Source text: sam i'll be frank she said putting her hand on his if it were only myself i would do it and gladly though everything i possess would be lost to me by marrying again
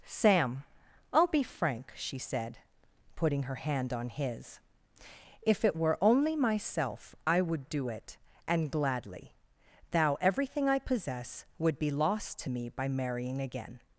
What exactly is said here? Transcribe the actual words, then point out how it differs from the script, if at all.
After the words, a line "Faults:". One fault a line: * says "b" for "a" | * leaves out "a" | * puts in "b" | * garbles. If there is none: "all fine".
sam i'll be frank she said putting her hand on his if it were only myself i would do it and gladly thou everything i possess would be lost to me by marrying again
Faults:
* says "thou" for "though"